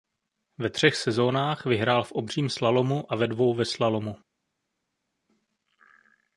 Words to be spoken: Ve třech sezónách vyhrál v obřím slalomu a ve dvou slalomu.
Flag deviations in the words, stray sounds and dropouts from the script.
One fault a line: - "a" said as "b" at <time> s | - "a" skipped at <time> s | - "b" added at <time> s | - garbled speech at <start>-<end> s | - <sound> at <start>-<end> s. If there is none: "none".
- "ve" added at 3.5 s